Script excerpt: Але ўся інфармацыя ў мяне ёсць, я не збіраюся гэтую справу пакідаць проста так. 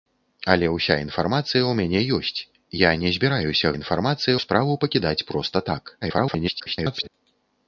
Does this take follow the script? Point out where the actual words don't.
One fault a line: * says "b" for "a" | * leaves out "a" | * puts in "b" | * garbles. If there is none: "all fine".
* says "інфармацыя" for "гэтую"
* garbles